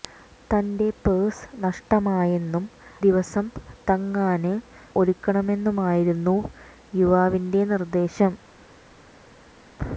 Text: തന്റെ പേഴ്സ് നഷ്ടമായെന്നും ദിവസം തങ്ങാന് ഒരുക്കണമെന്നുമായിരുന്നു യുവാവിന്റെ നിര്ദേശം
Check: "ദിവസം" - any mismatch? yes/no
no